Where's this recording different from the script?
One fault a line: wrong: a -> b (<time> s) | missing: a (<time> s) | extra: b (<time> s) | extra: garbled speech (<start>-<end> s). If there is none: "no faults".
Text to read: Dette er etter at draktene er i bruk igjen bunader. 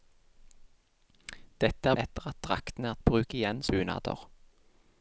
no faults